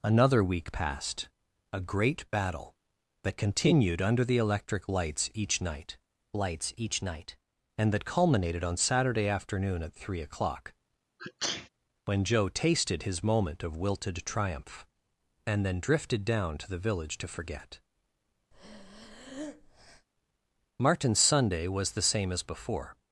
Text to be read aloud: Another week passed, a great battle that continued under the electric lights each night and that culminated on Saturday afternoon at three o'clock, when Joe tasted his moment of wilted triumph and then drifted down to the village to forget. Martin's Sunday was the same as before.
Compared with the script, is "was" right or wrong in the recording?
right